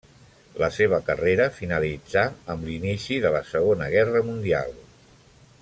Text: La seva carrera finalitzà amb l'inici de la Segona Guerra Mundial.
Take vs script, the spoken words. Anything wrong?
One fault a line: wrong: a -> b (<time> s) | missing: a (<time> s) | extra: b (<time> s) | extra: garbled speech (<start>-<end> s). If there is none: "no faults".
no faults